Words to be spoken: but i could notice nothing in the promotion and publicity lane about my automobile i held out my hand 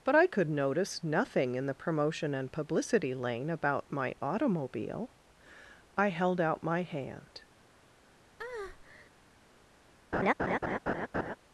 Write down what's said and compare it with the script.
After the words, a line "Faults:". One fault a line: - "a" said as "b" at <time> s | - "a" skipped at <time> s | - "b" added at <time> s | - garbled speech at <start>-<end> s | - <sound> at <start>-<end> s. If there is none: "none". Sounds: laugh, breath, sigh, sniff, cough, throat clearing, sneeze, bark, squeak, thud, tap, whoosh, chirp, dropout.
but i could notice nothing in the promotion and publicity lane about my automobile i held out my hand
Faults:
- breath at 8.4-9.1 s
- laugh at 10.1-11.4 s